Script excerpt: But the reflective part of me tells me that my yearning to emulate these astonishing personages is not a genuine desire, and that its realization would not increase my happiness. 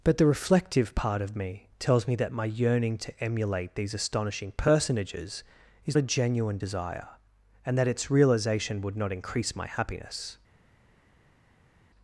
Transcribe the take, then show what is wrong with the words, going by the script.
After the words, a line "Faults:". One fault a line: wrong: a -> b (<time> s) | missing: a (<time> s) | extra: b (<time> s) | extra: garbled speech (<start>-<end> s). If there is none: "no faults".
But the reflective part of me tells me that my yearning to emulate these astonishing personages is a genuine desire, and that its realization would not increase my happiness.
Faults:
missing: not (6.0 s)